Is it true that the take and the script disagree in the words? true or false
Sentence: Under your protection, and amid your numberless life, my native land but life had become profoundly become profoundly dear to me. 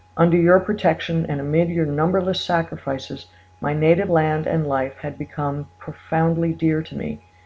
true